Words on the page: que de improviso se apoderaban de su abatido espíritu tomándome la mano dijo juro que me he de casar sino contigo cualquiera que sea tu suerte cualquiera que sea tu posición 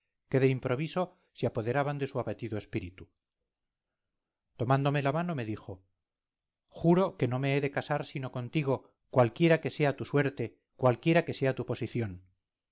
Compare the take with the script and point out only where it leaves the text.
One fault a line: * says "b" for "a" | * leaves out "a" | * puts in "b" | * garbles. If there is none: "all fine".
* puts in "me"
* puts in "no"